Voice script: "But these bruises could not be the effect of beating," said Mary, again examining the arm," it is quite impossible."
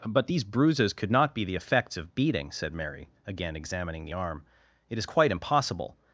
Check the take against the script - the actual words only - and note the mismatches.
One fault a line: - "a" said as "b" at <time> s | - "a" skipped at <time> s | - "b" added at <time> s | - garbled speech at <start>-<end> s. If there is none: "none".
- "effect" said as "effects" at 1.6 s